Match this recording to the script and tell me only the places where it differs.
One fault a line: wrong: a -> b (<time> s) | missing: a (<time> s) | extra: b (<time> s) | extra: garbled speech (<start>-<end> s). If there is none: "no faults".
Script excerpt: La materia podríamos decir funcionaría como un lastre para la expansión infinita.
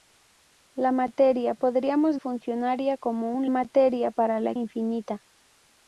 missing: decir (2.2 s)
wrong: lastre -> materia (3.5 s)
missing: expansión (4.5 s)